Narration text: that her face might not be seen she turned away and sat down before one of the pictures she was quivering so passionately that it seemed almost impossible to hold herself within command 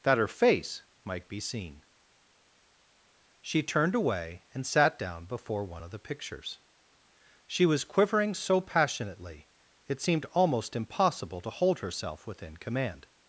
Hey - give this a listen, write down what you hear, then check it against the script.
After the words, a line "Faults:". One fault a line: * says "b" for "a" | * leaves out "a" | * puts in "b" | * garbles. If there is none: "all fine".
that her face might be seen she turned away and sat down before one of the pictures she was quivering so passionately it seemed almost impossible to hold herself within command
Faults:
* leaves out "not"
* leaves out "that"